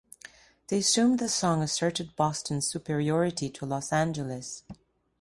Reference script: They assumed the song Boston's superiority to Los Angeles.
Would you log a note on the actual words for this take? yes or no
yes